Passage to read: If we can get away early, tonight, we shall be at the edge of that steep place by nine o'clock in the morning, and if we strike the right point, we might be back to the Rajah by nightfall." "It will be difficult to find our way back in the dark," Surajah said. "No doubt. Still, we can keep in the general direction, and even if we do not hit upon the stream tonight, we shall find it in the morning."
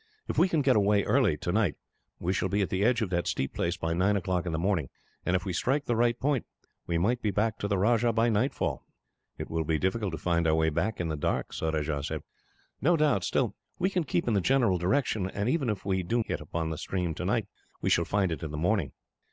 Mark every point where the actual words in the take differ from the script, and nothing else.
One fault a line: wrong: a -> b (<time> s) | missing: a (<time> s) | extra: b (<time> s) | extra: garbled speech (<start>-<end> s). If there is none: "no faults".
missing: not (16.2 s)